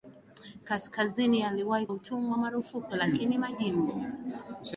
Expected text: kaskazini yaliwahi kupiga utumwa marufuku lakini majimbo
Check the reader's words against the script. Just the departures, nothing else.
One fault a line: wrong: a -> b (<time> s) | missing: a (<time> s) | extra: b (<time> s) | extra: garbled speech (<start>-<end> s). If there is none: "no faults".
missing: kupiga (1.9 s)